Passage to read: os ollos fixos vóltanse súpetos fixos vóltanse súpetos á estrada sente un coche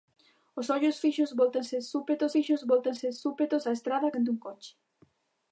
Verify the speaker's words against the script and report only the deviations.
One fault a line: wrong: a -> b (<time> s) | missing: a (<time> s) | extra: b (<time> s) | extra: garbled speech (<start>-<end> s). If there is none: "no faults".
no faults